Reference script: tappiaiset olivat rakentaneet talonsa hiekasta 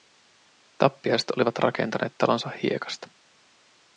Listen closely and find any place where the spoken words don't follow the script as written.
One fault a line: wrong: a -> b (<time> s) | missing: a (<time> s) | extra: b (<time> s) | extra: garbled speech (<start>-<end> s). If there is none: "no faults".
no faults